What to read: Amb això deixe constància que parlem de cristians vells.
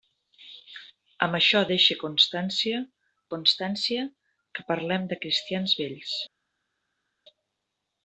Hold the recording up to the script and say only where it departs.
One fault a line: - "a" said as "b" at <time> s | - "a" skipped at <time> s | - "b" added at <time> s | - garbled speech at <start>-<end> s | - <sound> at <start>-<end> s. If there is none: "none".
- "constància" added at 3.3 s